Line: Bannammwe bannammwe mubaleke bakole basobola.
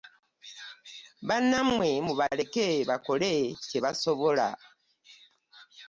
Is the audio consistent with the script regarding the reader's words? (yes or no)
no